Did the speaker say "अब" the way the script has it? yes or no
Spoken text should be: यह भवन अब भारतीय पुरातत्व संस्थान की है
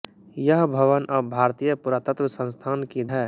yes